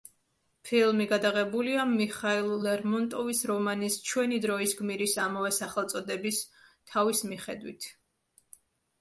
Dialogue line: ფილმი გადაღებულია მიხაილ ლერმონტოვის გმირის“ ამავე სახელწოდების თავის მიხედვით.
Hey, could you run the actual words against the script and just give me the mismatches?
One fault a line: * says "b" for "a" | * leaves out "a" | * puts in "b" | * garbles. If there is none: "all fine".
* puts in "რომანის ჩვენი დროის"